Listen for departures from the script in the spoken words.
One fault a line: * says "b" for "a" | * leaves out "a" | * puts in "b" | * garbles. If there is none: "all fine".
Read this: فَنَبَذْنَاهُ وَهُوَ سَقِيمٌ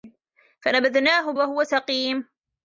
all fine